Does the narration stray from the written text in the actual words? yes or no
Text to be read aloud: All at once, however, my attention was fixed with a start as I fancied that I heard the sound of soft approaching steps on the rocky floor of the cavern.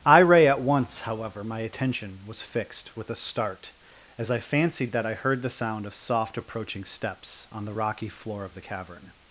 yes